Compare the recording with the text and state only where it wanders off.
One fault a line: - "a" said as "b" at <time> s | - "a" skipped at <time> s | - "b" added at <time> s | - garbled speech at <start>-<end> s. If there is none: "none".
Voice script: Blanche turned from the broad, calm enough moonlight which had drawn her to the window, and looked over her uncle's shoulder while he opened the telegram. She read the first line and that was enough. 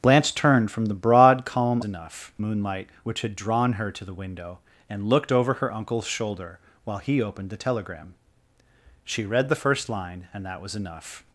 none